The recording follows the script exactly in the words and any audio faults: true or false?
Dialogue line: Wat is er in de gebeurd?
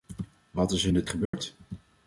false